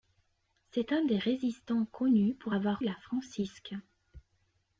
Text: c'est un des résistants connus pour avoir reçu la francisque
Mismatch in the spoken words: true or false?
true